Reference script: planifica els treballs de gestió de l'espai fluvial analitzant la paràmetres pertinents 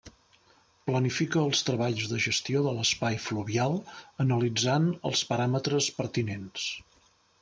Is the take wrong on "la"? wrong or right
wrong